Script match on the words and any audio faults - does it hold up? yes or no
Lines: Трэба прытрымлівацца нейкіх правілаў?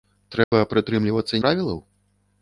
no